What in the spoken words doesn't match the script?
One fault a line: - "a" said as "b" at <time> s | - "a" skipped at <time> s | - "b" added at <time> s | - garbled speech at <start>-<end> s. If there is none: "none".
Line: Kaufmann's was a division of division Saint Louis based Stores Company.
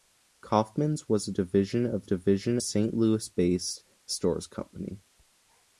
none